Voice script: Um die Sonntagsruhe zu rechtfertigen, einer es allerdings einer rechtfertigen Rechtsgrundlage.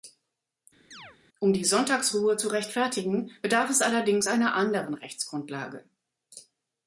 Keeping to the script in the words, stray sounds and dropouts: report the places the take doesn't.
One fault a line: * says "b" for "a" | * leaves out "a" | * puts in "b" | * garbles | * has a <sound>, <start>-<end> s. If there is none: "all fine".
* has a chirp, 0.9-1.2 s
* says "bedarf" for "einer"
* says "anderen" for "rechtfertigen"